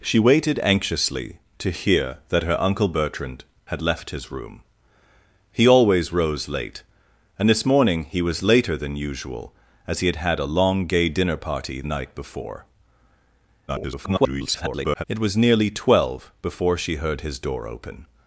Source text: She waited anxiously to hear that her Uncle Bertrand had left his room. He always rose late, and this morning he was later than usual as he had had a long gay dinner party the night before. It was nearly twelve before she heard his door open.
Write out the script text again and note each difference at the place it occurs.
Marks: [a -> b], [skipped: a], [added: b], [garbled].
She waited anxiously to hear that her Uncle Bertrand had left his room. He always rose late, and this morning he was later than usual as he had had a long gay dinner party [skipped: the] night before. [garbled] It was nearly twelve before she heard his door open.